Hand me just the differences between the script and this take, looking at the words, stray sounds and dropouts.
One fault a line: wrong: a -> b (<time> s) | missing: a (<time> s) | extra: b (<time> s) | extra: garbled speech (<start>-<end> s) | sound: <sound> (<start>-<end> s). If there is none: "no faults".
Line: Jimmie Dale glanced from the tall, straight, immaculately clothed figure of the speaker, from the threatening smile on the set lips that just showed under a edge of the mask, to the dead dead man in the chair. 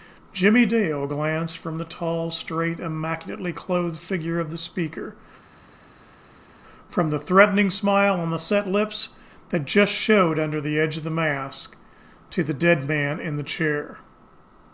wrong: a -> the (10.6 s)
missing: dead (12.9 s)